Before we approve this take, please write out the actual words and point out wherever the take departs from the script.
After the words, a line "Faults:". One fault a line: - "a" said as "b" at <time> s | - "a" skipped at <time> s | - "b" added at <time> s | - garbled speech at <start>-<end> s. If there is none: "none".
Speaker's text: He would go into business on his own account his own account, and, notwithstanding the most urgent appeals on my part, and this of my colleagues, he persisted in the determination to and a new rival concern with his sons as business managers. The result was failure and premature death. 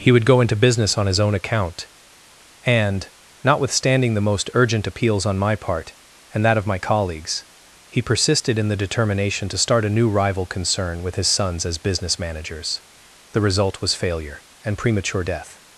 He would go into business on his own account, and, notwithstanding the most urgent appeals on my part, and that of my colleagues, he persisted in the determination to start a new rival concern with his sons as business managers. The result was failure and premature death.
Faults:
- "his own account" skipped at 1.9 s
- "this" said as "that" at 6.4 s
- "and" said as "start" at 9.6 s